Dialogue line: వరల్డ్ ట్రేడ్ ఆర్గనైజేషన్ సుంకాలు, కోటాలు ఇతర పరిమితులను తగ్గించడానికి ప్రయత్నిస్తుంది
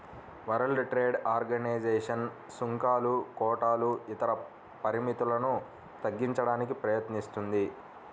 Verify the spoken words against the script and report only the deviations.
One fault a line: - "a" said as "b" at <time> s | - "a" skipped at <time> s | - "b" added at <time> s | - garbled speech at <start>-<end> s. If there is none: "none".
none